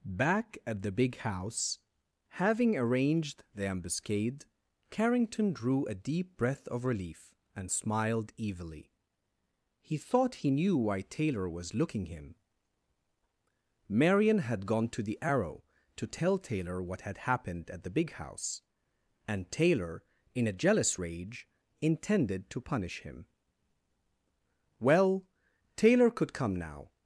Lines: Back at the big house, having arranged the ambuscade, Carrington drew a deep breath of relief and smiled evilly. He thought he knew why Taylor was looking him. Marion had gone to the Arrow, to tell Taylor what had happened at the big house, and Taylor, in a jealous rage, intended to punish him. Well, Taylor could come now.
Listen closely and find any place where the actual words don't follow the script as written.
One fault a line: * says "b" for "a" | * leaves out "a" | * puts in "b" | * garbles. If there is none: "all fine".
all fine